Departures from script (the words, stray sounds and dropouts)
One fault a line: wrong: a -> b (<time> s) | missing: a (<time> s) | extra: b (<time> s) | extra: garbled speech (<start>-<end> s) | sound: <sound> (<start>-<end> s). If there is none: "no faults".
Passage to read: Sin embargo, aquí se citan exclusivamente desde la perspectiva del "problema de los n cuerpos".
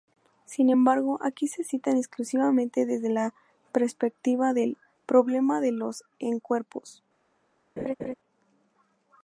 sound: laugh (7.8-8.1 s)